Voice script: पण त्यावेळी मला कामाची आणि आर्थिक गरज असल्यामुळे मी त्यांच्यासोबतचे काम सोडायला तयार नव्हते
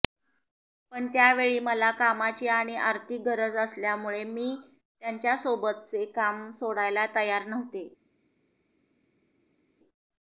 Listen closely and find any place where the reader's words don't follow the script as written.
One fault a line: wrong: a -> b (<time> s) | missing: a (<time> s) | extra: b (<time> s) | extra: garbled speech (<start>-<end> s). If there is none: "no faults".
no faults